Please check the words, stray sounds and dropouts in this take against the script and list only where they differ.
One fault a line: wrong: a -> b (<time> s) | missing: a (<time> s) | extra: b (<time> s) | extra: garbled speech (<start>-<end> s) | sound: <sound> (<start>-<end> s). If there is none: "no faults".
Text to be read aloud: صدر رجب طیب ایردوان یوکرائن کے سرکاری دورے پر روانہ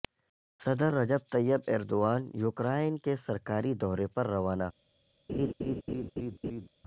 sound: laugh (5.3-6.7 s)